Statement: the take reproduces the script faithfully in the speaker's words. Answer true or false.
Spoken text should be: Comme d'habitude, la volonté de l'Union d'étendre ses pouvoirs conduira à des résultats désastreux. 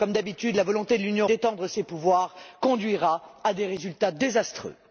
true